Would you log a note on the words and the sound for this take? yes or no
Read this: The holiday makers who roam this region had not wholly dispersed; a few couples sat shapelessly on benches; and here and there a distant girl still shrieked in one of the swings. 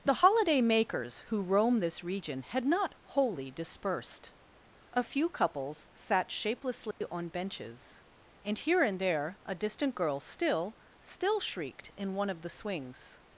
yes